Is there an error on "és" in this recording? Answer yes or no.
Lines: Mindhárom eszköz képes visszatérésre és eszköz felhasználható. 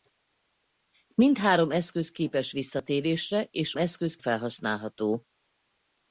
no